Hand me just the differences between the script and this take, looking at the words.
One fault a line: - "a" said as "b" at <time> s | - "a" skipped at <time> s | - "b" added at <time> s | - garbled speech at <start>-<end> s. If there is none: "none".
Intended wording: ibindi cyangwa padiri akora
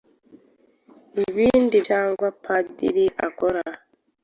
none